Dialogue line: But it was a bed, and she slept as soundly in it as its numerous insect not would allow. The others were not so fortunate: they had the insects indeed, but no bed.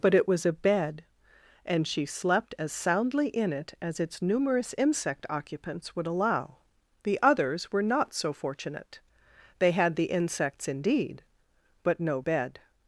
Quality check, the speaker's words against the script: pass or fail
fail